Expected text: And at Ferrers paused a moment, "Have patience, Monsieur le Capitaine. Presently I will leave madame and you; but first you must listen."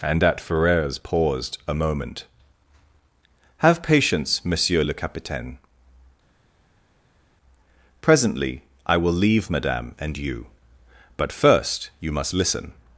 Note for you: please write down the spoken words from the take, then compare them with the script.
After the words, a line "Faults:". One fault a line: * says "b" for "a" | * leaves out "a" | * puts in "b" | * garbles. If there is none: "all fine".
And at Ferrers paused a moment, "Have patience, Monsieur le Capitaine. Presently I will leave madame and you; but first you must listen."
Faults:
all fine